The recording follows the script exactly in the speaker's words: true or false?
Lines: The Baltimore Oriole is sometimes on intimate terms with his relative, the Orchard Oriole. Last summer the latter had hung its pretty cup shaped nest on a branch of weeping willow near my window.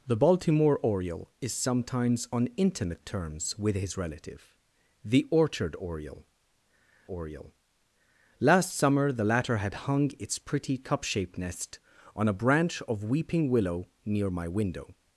false